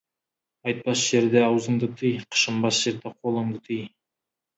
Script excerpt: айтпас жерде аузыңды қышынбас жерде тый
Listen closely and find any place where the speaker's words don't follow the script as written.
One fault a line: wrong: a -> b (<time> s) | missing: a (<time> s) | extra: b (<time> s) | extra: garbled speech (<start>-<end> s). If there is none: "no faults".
extra: тый (2.0 s)
extra: қолыңды (3.2 s)